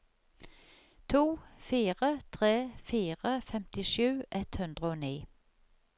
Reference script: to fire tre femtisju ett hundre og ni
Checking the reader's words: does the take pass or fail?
fail